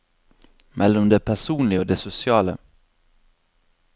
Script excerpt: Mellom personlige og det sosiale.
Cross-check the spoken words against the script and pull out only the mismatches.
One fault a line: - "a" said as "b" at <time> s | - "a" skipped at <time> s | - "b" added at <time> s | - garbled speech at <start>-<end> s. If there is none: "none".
- "det" added at 1.1 s